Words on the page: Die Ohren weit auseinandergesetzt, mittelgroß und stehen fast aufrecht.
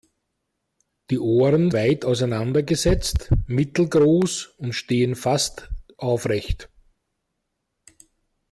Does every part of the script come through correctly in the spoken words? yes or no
yes